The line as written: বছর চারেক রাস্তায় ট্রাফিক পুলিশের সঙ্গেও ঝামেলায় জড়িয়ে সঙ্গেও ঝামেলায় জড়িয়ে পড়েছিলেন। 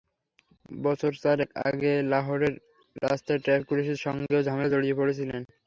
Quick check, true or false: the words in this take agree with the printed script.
false